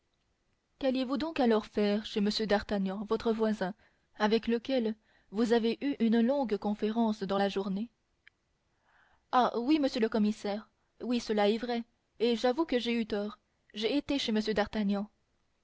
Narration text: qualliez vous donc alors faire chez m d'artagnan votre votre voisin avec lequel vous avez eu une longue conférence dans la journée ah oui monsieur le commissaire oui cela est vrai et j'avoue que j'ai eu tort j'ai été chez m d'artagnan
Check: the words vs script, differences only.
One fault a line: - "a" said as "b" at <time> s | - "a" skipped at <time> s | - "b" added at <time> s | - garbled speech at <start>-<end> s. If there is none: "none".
- "votre" skipped at 3.3 s